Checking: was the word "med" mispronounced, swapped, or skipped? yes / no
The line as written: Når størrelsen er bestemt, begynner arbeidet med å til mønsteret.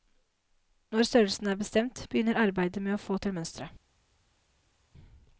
no